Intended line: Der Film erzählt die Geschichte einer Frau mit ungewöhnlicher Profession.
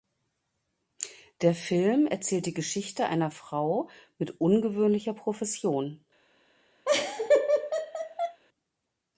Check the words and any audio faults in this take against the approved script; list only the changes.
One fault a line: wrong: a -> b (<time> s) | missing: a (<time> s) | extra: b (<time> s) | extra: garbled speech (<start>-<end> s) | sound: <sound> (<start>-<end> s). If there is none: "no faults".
sound: laugh (6.8-8.4 s)